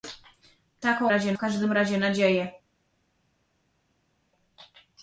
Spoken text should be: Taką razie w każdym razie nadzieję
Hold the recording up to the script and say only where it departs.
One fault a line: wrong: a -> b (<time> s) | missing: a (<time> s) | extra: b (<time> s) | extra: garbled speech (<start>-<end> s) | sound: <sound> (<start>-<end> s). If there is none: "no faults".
no faults